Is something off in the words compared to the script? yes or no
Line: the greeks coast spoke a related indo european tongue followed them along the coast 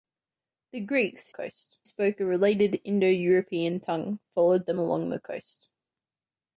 no